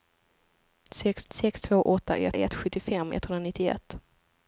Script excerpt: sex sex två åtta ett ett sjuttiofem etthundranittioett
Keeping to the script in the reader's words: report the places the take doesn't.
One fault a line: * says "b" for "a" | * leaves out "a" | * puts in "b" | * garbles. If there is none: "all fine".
all fine